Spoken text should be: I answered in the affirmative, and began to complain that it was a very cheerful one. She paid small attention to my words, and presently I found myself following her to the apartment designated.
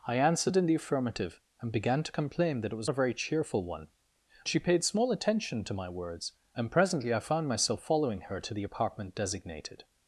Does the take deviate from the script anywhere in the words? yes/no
no